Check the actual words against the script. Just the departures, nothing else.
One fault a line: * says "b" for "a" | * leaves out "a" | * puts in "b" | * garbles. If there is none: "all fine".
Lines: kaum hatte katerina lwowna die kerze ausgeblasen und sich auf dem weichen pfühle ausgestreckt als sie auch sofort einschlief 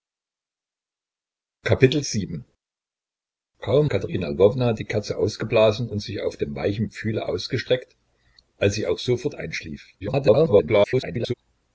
* leaves out "hatte"
* garbles